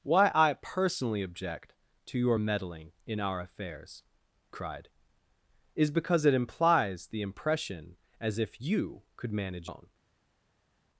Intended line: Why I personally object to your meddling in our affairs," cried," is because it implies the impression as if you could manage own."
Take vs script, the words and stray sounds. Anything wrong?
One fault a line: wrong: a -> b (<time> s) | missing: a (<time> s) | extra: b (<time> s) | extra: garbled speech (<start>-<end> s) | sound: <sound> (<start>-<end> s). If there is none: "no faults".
no faults